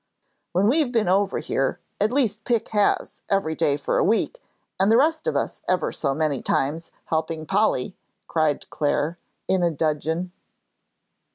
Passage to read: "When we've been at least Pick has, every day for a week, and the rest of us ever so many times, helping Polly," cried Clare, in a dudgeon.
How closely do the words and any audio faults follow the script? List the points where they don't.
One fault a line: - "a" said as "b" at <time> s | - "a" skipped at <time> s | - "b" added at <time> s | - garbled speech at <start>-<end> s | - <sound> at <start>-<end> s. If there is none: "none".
- "over here" added at 1.1 s